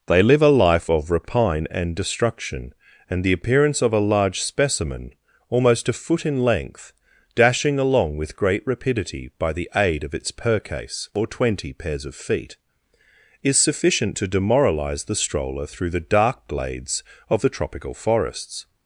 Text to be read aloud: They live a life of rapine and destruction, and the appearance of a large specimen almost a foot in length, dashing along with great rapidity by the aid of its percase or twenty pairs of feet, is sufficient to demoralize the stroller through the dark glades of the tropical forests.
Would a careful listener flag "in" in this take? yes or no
no